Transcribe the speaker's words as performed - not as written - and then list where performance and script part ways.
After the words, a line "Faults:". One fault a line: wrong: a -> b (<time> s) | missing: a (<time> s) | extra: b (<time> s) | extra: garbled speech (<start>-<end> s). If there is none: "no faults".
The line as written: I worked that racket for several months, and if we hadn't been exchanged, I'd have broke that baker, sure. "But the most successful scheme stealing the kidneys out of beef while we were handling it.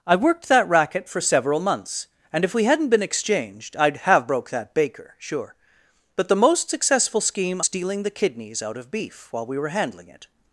I worked that racket for several months, and if we hadn't been exchanged, I'd have broke that baker, sure. "But the most successful scheme stealing the kidneys out of beef while we were handling it.
Faults:
no faults